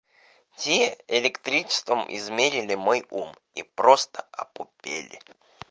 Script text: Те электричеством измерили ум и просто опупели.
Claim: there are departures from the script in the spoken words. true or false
true